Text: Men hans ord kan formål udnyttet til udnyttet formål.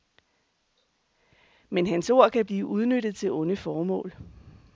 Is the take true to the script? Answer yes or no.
no